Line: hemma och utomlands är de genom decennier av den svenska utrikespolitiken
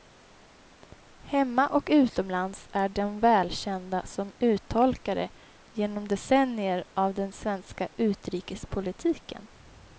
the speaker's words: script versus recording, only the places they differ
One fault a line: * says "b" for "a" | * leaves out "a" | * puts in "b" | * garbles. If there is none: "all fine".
* puts in "välkända som uttolkare"